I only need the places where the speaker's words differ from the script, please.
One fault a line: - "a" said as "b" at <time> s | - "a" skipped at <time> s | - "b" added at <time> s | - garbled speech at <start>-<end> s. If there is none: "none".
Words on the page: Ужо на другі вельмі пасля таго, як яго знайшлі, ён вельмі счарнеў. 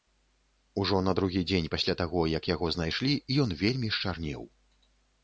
- "вельмі" said as "дзень" at 1.5 s